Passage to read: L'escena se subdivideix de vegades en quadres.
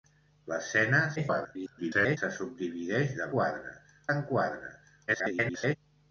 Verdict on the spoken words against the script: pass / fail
fail